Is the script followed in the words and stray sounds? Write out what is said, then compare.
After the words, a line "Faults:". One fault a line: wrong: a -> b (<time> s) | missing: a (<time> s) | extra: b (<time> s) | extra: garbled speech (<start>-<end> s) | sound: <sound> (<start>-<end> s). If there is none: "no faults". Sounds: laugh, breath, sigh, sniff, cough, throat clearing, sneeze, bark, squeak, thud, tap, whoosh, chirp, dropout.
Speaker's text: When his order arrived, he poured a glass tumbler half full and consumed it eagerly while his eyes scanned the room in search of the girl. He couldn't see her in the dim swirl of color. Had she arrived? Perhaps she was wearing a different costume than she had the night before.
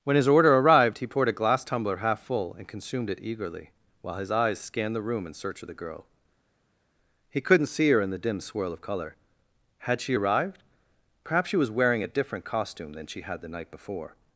When his order arrived, he poured a glass tumbler half full and consumed it eagerly while his eyes scanned the room in search of the girl. He couldn't see her in the dim swirl of color. Had she arrived? Perhaps she was wearing a different costume than she had the night before.
Faults:
no faults